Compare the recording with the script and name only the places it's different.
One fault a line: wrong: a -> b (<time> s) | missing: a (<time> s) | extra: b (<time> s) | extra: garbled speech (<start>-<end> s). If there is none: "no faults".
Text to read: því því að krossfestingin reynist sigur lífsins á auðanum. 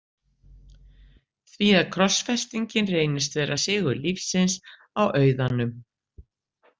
missing: því (1.7 s)
extra: vera (3.4 s)